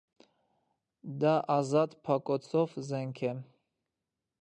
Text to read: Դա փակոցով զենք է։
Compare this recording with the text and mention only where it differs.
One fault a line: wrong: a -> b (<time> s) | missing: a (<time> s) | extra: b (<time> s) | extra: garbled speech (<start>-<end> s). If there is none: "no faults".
extra: ազատ (1.6 s)